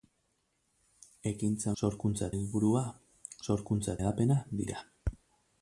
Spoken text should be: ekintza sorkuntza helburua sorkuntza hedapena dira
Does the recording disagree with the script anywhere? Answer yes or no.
no